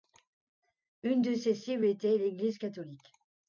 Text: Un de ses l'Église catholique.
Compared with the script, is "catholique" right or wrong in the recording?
right